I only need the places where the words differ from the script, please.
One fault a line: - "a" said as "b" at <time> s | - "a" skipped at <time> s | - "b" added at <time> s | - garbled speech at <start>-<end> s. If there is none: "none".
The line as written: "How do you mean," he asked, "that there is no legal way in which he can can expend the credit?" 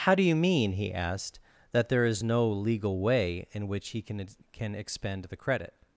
none